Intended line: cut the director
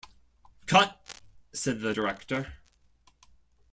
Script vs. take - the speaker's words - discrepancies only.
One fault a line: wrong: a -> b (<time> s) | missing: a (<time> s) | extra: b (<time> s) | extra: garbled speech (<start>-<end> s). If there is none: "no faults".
extra: said (1.5 s)